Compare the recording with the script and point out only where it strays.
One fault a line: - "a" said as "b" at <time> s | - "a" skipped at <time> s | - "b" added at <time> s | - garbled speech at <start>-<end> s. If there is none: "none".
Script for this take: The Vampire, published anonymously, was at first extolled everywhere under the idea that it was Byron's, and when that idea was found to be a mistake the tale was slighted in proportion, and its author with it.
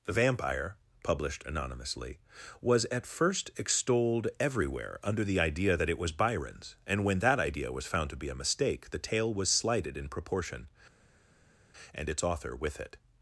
none